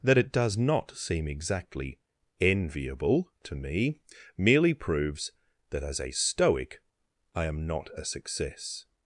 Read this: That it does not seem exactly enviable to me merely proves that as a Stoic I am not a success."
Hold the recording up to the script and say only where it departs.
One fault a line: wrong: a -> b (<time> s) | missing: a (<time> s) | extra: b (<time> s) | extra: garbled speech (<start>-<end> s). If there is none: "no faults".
no faults